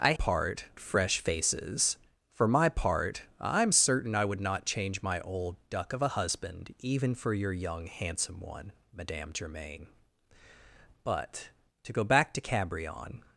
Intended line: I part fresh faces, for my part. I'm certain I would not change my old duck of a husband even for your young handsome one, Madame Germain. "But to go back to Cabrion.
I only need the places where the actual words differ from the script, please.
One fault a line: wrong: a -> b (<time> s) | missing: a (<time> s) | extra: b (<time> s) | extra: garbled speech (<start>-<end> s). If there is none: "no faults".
no faults